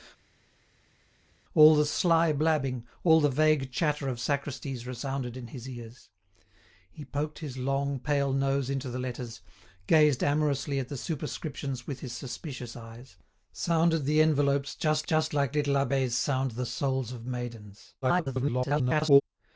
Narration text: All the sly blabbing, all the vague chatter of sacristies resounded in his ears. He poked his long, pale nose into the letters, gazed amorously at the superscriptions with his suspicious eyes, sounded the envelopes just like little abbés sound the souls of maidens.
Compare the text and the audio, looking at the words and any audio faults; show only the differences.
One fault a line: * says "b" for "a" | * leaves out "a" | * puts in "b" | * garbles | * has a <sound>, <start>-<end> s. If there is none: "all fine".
* puts in "just"
* garbles